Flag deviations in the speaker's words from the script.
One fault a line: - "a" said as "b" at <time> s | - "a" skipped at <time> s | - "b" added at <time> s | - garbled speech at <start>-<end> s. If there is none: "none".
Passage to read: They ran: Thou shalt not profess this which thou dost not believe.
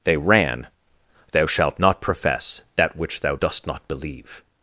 - "this" said as "that" at 2.8 s